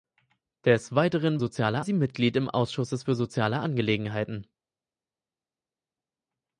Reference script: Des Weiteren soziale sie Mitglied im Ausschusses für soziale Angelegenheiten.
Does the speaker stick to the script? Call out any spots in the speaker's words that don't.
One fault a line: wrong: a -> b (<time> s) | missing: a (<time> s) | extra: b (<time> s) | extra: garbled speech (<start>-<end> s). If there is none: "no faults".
no faults